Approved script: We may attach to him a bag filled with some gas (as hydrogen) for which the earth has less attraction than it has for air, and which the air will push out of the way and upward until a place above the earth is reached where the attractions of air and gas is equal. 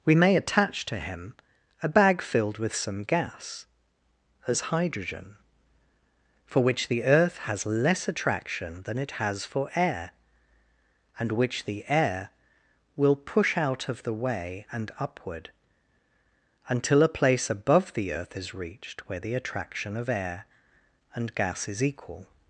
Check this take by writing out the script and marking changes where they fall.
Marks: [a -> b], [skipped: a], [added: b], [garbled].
We may attach to him a bag filled with some gas (as hydrogen) for which the earth has less attraction than it has for air, and which the air will push out of the way and upward until a place above the earth is reached where the [attractions -> attraction] of air and gas is equal.